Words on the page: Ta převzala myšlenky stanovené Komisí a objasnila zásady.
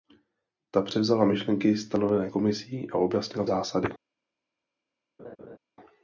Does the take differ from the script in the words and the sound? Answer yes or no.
yes